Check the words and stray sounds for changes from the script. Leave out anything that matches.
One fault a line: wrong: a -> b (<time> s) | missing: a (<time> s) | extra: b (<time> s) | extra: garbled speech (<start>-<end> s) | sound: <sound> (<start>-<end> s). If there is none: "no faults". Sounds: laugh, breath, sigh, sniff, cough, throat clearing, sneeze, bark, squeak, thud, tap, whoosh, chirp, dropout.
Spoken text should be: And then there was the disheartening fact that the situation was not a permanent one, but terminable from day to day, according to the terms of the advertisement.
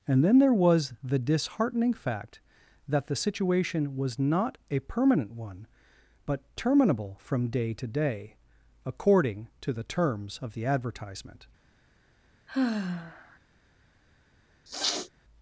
sound: sigh (12.5-13.4 s)
sound: sniff (14.7-15.1 s)